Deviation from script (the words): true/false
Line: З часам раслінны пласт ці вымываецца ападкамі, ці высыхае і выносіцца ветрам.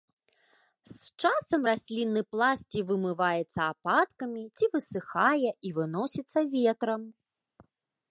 false